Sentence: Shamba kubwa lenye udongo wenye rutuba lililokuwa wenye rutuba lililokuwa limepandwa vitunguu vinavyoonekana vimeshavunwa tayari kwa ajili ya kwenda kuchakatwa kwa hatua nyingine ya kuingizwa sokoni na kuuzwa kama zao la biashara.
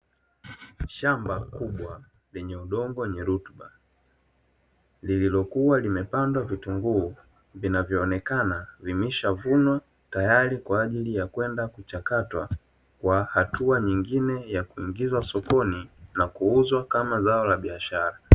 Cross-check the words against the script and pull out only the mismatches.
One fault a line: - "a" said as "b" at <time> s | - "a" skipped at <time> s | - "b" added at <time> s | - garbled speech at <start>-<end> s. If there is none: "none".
- "wenye rutuba lililokuwa" skipped at 5.8 s